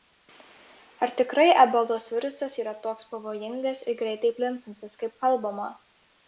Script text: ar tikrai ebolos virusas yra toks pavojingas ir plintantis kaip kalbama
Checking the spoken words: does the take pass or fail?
fail